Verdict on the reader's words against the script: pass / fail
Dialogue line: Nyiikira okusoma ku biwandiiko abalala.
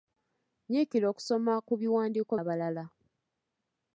pass